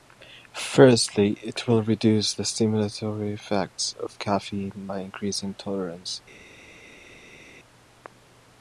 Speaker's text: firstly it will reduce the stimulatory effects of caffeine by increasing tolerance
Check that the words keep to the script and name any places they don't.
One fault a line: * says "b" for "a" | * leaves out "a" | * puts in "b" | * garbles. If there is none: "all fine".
all fine